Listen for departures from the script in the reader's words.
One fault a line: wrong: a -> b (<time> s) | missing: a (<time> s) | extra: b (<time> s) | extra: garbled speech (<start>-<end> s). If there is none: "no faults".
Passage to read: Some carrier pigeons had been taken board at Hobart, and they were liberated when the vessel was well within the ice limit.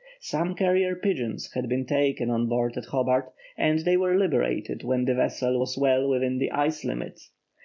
extra: on (2.3 s)